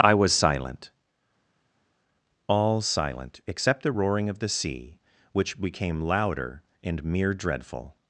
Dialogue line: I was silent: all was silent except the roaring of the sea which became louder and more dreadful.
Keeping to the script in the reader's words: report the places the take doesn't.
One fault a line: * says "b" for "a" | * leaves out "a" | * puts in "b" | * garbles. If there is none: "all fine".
* leaves out "was"
* says "mere" for "more"